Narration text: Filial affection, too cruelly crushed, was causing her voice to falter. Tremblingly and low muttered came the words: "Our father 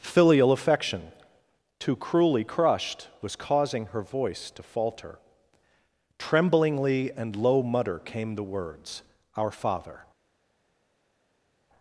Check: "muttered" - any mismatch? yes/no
yes